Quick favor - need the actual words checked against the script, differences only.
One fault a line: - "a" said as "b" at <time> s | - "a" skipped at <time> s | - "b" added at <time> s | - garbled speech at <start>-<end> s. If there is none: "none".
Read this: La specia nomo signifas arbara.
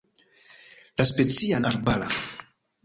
- "nomo signifas" skipped at 1.6 s